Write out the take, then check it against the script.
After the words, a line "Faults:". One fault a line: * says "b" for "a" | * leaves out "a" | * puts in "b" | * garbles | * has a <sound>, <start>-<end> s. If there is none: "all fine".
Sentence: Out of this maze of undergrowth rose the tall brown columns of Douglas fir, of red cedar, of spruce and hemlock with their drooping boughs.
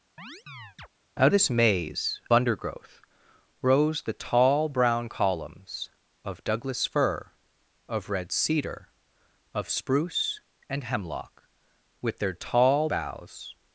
Out this maze undergrowth rose the tall brown columns of Douglas fir, of red cedar, of spruce and hemlock with their tall boughs.
Faults:
* has a chirp, 0.2-0.9 s
* leaves out "of"
* leaves out "of"
* says "tall" for "drooping"